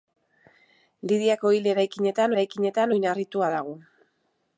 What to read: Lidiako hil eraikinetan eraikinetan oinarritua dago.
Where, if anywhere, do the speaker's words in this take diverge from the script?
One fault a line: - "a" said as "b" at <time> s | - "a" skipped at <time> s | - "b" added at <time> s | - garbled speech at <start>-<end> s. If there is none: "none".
none